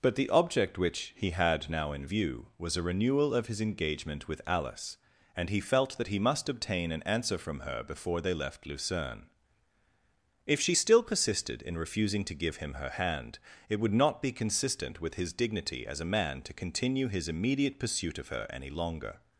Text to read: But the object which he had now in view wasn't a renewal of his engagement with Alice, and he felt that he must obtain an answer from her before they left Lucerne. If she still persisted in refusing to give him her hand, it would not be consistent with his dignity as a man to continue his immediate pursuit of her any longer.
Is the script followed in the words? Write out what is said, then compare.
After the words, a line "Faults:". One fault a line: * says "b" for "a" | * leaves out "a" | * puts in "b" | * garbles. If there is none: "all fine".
But the object which he had now in view was a renewal of his engagement with Alice, and he felt that he must obtain an answer from her before they left Lucerne. If she still persisted in refusing to give him her hand, it would not be consistent with his dignity as a man to continue his immediate pursuit of her any longer.
Faults:
* says "was" for "wasn't"